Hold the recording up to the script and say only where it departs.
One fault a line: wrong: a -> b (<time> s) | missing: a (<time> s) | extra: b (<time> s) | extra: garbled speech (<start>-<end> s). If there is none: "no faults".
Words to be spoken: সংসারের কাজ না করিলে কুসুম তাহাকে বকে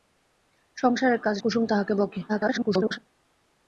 missing: না করিলে (1.4 s)
extra: garbled speech (2.3-3.0 s)